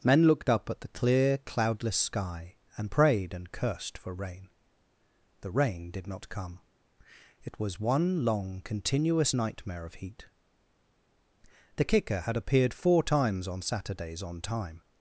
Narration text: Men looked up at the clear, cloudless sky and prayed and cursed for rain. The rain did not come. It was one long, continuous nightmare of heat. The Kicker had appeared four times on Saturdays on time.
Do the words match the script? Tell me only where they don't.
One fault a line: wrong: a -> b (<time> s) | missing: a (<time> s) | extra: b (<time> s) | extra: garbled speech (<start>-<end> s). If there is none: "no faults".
no faults